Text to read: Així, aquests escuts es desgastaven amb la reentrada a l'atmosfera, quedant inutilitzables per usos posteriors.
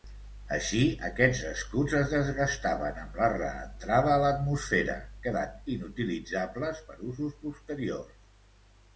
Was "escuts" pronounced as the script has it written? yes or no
yes